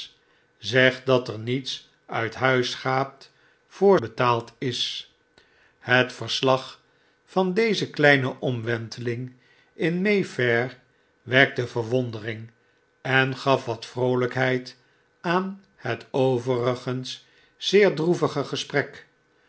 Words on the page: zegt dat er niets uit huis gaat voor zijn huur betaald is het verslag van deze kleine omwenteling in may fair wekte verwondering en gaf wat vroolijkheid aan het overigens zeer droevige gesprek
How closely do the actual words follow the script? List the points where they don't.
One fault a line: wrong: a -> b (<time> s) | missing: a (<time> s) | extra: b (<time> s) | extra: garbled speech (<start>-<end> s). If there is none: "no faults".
missing: zijn huur (4.0 s)